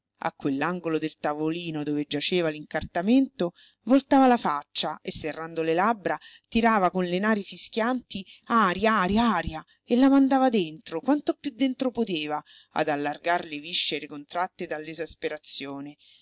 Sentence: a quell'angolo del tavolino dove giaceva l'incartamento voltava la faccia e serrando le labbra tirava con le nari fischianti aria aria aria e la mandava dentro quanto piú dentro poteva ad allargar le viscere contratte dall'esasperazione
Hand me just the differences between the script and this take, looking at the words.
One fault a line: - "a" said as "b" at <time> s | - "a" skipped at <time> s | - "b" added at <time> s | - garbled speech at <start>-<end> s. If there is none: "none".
none